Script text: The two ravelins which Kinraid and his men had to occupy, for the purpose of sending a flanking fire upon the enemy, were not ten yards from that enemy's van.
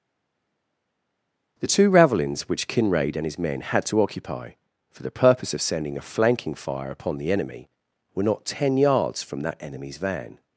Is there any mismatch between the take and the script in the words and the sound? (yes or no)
no